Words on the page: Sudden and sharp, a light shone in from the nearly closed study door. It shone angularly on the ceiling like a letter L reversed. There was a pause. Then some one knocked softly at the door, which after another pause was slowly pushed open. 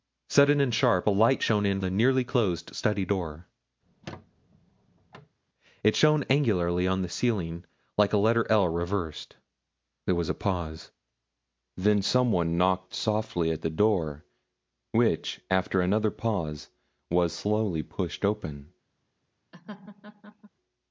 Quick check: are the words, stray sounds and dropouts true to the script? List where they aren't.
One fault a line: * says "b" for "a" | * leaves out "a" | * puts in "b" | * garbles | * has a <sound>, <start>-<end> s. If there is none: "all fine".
* leaves out "from"
* has a squeak, 3.8-5.4 s
* has a laugh, 19.5-20.5 s